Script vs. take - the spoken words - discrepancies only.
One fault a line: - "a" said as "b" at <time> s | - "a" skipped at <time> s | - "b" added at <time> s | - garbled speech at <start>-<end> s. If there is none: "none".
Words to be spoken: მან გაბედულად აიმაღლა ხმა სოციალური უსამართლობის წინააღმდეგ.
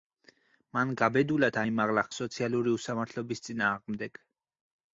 - "ხმა" skipped at 2.1 s